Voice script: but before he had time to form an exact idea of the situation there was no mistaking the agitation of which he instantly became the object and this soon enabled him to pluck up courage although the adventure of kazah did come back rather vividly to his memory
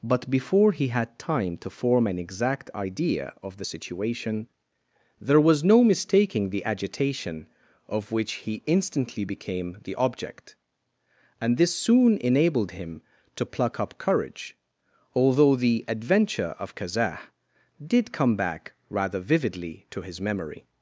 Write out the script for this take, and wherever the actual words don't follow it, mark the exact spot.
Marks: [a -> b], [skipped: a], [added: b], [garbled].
but before he had time to form an exact idea of the situation there was no mistaking the agitation of which he instantly became the object and this soon enabled him to pluck up courage although the adventure of kazah did come back rather vividly to his memory